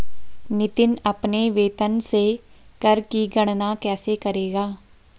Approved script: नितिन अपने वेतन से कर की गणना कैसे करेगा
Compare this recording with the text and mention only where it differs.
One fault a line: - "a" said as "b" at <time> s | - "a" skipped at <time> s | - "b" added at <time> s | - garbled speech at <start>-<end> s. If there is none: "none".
none